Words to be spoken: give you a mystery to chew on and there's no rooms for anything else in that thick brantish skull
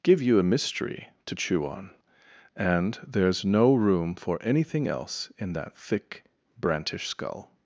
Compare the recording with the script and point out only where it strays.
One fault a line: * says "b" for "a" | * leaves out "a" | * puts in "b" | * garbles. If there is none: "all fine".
* says "room" for "rooms"